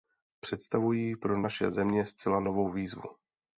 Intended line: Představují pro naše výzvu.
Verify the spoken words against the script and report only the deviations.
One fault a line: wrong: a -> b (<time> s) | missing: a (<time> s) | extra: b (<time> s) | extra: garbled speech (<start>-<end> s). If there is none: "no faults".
extra: země zcela novou (1.7 s)